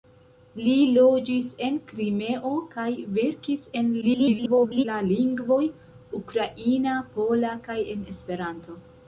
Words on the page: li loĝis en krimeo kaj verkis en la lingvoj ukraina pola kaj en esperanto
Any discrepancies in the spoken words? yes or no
yes